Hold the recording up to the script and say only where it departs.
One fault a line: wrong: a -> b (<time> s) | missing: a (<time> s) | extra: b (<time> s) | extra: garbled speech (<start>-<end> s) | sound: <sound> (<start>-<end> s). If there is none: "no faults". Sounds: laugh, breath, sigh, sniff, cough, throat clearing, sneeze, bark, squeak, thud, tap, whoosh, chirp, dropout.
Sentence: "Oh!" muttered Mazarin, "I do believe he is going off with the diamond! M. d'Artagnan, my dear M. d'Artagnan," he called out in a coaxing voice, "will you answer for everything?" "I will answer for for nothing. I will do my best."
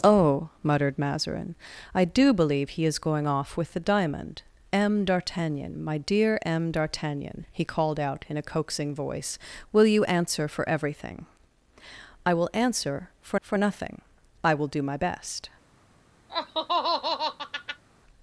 sound: laugh (16.3-17.8 s)